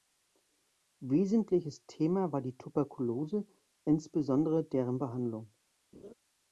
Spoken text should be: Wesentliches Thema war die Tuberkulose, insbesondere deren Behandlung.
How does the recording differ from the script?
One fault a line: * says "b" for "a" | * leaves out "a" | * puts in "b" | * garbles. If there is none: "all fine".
all fine